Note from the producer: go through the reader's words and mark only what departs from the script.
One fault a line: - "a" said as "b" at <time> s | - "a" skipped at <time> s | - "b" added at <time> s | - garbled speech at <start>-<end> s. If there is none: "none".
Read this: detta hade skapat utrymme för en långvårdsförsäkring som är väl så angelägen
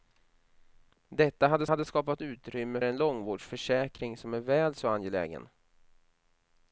- "hade" added at 1.7 s
- "för" skipped at 2.8 s